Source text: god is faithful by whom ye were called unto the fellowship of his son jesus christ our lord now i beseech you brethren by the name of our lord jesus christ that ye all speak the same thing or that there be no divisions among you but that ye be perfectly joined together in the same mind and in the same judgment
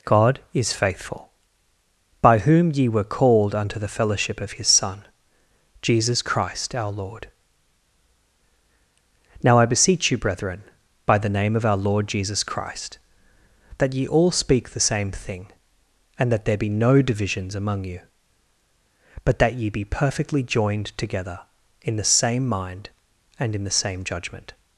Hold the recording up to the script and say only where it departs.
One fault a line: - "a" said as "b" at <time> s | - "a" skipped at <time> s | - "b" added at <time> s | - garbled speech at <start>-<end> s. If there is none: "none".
- "or" said as "and" at 16.2 s